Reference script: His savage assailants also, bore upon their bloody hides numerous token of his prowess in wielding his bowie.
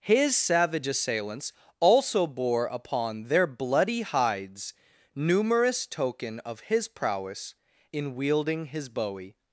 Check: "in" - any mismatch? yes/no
no